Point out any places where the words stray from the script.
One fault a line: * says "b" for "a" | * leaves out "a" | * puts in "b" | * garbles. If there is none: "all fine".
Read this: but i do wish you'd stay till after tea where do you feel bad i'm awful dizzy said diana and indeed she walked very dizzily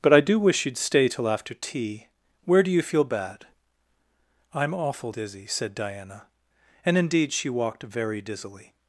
all fine